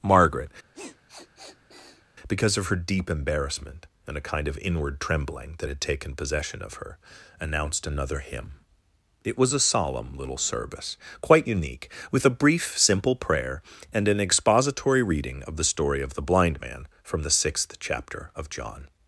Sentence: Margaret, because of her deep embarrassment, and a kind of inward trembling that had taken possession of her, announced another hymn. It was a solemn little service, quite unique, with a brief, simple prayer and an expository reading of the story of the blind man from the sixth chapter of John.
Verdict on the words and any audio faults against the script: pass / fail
fail